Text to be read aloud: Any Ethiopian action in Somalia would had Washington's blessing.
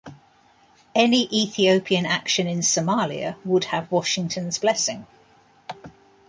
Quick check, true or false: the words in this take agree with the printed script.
false